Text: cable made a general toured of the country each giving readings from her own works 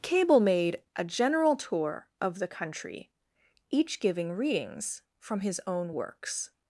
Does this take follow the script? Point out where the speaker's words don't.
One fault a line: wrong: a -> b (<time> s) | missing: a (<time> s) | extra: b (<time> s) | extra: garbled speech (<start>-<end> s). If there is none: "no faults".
wrong: toured -> tour (1.6 s)
wrong: her -> his (5.4 s)